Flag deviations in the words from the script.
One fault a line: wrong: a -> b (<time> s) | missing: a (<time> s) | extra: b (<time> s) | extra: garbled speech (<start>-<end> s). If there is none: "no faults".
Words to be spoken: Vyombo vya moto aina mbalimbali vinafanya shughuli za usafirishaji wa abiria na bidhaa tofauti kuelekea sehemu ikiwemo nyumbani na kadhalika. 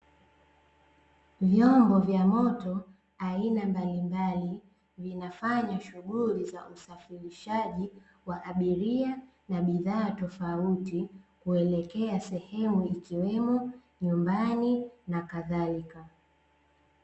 no faults